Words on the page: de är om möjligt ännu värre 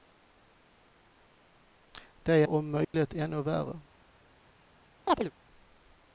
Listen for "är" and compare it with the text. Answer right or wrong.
wrong